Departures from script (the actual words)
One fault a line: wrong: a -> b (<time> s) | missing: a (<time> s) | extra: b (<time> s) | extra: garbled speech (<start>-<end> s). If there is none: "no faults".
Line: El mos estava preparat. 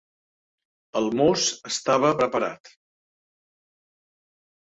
no faults